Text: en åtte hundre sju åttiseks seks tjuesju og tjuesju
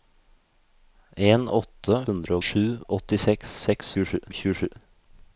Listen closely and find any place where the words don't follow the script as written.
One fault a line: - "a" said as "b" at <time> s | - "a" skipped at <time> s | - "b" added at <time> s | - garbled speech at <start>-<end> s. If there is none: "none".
none